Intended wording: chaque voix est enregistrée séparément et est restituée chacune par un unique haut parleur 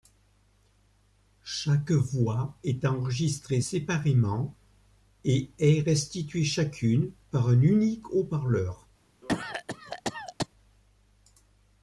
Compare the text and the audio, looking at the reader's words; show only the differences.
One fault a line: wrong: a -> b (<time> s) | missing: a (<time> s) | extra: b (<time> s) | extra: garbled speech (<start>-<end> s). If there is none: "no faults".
no faults